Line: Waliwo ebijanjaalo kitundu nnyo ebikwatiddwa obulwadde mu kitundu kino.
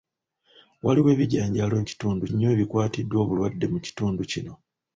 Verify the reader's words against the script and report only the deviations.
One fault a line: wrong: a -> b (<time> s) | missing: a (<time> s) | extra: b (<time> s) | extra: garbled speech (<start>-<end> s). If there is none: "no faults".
no faults